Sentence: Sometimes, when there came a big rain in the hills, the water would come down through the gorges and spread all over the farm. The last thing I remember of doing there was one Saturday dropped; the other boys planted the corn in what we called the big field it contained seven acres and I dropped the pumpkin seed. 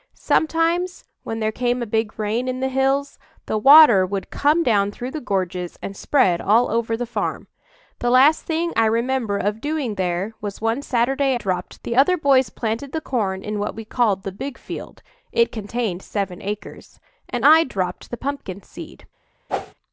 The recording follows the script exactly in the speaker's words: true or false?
true